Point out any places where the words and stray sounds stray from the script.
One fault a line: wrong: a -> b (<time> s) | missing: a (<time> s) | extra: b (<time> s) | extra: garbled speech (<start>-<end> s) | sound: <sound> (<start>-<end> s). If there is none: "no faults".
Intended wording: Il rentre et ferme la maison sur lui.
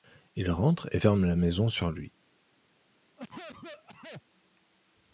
sound: cough (3.2-4.2 s)